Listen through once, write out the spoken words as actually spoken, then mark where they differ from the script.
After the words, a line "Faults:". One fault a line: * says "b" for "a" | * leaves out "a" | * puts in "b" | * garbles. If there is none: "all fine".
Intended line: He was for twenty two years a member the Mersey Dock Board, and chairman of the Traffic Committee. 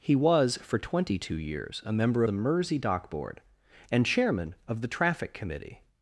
He was for twenty two years a member the Mersey Dock Board, and chairman of the Traffic Committee.
Faults:
all fine